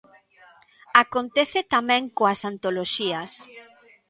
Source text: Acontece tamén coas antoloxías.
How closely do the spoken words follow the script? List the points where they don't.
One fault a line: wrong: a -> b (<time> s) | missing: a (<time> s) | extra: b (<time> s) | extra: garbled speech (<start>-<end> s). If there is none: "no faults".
no faults